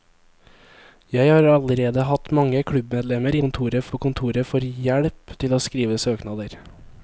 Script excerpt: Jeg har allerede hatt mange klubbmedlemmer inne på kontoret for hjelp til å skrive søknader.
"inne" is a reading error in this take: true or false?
true